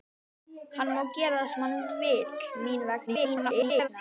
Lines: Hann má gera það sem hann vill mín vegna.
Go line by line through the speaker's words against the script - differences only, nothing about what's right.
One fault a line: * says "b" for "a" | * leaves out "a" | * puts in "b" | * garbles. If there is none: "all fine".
* garbles